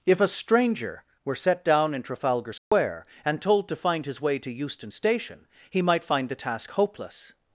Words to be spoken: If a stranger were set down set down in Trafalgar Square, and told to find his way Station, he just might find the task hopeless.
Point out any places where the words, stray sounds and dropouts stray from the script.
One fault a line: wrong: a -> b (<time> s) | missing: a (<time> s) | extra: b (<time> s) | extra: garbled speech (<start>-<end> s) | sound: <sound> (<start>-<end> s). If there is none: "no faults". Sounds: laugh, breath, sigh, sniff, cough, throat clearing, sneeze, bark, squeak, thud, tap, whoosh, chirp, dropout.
missing: set down (1.9 s)
sound: dropout (2.6-2.7 s)
extra: to Euston (4.4 s)
missing: just (5.8 s)